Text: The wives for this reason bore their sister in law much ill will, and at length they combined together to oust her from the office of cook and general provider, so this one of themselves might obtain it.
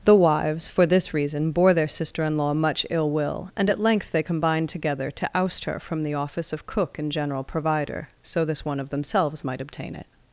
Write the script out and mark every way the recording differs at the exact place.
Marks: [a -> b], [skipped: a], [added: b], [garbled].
The wives for this reason bore their sister in law much ill will, and at length they combined together to oust her from the office of cook and general provider, so this one of themselves might obtain it.